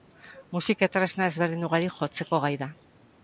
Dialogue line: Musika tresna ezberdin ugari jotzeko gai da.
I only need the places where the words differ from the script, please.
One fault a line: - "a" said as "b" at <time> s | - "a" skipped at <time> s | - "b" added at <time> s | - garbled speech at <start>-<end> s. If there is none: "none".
none